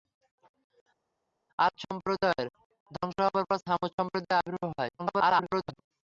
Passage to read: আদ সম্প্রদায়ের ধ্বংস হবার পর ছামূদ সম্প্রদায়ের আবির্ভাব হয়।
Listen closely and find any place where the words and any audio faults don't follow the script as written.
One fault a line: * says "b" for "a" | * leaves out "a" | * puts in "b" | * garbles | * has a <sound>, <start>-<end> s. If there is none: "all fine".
* garbles